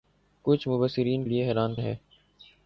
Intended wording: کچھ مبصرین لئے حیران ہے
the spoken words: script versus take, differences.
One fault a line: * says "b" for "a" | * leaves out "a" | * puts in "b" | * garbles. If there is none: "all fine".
all fine